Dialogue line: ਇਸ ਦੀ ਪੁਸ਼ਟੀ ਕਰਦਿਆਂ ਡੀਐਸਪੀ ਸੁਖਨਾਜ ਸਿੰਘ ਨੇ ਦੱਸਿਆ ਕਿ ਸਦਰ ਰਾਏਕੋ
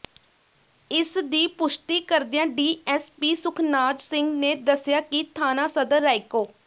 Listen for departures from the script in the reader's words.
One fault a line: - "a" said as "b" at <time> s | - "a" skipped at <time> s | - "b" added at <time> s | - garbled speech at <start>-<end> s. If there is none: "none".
- "ਥਾਣਾ" added at 5.3 s